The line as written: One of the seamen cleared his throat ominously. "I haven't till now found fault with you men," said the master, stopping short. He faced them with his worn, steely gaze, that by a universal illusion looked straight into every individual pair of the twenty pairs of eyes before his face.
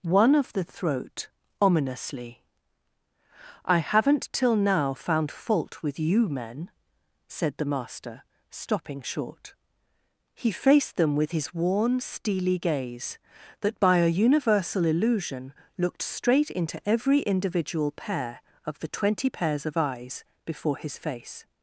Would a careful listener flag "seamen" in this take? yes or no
yes